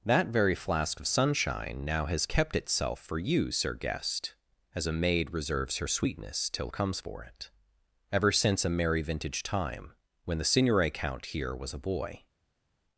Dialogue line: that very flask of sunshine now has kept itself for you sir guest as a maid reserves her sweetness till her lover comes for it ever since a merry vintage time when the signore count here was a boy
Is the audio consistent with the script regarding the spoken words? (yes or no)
no